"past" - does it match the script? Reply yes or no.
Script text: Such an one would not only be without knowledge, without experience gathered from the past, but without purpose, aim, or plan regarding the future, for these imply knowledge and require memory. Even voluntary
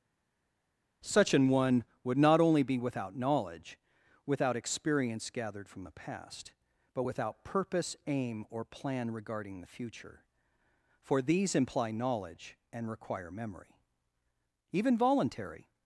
yes